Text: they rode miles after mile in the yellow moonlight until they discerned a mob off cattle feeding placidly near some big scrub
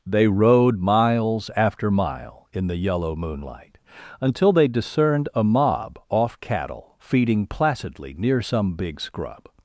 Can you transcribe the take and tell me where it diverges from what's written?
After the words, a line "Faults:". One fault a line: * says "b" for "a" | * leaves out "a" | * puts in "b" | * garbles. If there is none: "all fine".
they rode miles after mile in the yellow moonlight until they discerned a mob off cattle feeding placidly near some big scrub
Faults:
all fine